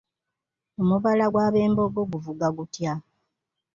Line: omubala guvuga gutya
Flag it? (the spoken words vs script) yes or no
yes